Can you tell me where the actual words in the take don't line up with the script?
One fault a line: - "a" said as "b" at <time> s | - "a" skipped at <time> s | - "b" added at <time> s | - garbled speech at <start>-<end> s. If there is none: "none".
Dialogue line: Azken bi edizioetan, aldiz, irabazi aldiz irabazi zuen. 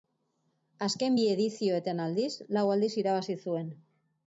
- "irabazi" said as "lau" at 2.6 s